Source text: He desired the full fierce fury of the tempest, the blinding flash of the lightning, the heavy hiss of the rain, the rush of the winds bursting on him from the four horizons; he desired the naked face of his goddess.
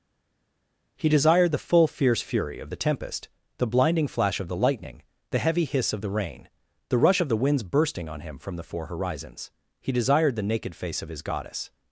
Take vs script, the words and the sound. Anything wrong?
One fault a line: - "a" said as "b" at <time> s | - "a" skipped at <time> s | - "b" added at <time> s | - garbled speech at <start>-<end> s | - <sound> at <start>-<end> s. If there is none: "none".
none